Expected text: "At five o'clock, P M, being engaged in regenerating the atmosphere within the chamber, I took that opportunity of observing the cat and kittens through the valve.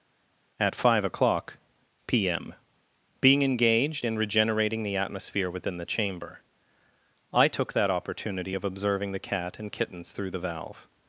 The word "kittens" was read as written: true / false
true